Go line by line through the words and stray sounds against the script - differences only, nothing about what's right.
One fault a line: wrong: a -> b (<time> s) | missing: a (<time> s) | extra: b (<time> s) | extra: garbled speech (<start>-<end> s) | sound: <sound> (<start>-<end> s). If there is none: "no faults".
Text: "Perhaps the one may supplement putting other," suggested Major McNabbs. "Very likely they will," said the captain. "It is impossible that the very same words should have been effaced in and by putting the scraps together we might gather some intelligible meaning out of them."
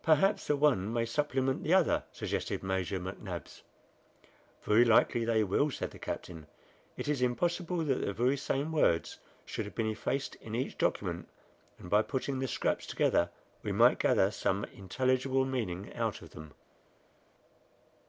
wrong: putting -> the (1.6 s)
extra: each document (10.6 s)